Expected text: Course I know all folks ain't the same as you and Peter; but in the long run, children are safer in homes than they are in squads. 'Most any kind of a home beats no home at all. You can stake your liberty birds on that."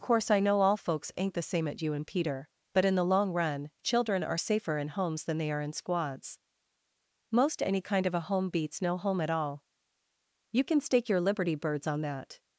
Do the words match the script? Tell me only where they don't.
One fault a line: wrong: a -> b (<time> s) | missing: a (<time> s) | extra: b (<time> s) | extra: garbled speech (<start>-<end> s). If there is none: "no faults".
wrong: as -> at (1.7 s)